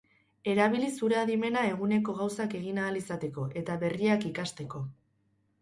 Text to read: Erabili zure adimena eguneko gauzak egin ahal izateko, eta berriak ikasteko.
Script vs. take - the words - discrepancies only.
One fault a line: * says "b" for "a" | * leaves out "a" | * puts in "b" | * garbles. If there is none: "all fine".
all fine